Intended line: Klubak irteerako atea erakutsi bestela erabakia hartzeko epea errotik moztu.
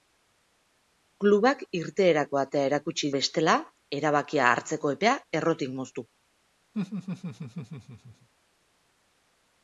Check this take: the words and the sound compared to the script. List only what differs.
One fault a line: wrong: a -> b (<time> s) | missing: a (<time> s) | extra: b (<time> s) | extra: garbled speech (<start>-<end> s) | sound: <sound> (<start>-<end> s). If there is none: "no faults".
sound: laugh (6.7-8.3 s)